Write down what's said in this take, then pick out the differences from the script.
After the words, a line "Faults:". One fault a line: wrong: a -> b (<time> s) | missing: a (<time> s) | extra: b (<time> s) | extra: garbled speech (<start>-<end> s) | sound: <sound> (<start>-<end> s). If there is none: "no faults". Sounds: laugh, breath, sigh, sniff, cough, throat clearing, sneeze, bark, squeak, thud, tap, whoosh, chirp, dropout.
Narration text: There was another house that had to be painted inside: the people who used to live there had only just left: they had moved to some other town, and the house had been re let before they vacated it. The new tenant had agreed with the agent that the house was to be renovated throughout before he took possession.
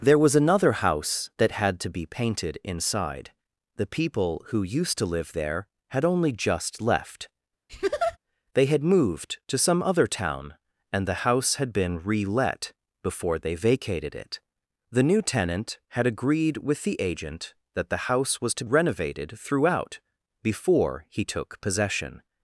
There was another house that had to be painted inside: the people who used to live there had only just left: they had moved to some other town, and the house had been re let before they vacated it. The new tenant had agreed with the agent that the house was to renovated throughout before he took possession.
Faults:
sound: laugh (7.7-8.2 s)
missing: be (18.6 s)